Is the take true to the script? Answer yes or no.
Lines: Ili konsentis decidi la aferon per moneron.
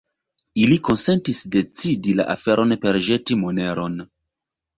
no